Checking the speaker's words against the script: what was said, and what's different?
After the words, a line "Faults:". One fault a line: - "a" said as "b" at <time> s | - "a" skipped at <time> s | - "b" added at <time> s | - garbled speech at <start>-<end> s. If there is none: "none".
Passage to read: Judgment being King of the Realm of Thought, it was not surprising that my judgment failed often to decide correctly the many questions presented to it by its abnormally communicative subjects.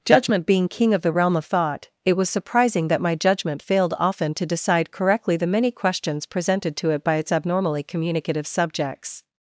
Judgment being King of the Realm of Thought, it was surprising that my judgment failed often to decide correctly the many questions presented to it by its abnormally communicative subjects.
Faults:
- "not" skipped at 2.3 s